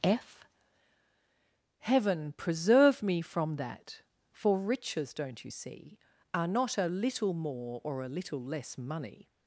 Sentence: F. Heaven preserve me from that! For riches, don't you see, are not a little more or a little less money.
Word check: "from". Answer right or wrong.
right